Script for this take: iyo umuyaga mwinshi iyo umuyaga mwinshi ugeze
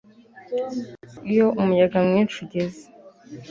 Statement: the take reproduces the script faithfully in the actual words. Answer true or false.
false